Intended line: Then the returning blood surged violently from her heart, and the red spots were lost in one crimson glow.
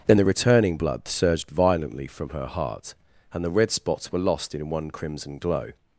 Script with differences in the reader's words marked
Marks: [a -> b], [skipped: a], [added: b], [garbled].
Then the returning blood surged violently from her heart, and the red spots were lost in one crimson glow.